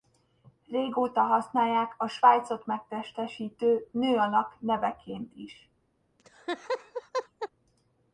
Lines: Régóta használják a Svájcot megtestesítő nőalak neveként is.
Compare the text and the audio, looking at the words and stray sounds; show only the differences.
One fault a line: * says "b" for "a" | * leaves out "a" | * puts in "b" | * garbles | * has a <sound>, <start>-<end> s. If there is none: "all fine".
* has a laugh, 6.2-7.5 s